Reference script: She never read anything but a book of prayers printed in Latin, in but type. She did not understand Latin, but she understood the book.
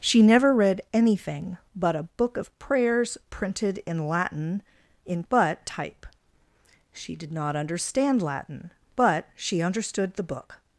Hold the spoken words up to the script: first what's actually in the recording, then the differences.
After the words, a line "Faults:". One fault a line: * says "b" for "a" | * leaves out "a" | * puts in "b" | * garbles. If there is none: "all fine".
She never read anything but a book of prayers printed in Latin, in but type. She did not understand Latin, but she understood the book.
Faults:
all fine